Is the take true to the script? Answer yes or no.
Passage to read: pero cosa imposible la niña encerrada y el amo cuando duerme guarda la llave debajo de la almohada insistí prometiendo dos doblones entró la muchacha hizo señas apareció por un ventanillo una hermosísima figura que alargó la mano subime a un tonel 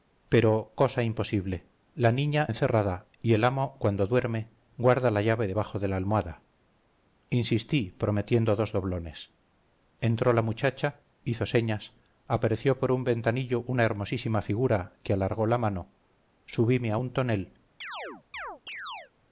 yes